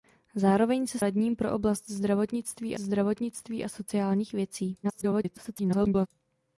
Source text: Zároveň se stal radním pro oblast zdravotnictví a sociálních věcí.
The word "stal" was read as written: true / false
false